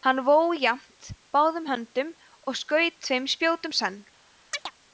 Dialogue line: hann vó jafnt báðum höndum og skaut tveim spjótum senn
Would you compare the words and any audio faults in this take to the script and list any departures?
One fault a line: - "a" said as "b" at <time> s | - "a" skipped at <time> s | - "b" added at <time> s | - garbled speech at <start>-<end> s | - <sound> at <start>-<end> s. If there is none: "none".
- chirp at 4.5-4.7 s